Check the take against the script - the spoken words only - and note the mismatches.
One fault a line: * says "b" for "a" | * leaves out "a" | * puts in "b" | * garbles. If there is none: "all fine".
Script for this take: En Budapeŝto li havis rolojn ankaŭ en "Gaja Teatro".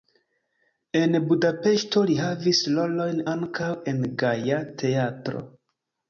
all fine